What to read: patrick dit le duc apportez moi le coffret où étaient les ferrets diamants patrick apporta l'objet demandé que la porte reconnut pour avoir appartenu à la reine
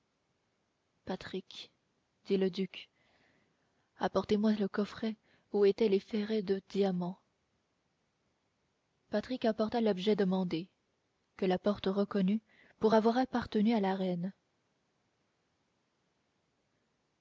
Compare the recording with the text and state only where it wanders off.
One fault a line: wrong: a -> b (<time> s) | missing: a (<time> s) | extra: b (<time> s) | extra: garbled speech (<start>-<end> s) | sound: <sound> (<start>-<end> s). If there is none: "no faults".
extra: de (6.4 s)